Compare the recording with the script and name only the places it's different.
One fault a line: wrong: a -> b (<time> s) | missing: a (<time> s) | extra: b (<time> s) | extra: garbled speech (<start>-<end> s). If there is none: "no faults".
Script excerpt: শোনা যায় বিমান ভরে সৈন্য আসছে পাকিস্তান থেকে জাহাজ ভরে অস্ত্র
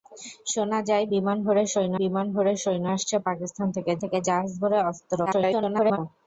extra: বিমান ভরে সৈন্য (2.0 s)
extra: থেকে (4.0 s)
extra: garbled speech (5.3-6.0 s)